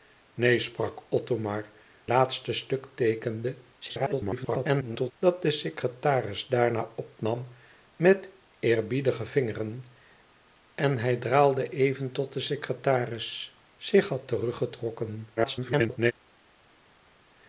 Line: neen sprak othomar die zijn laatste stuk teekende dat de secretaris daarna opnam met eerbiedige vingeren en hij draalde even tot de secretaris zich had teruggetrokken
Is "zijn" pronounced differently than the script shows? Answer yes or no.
yes